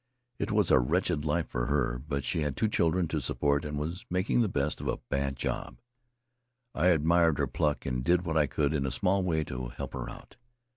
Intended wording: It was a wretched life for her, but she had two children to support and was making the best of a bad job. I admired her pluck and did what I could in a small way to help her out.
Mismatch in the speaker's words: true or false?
false